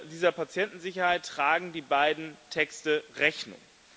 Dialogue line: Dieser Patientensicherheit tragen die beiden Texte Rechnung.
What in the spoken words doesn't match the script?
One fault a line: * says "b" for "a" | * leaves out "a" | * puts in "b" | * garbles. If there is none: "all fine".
all fine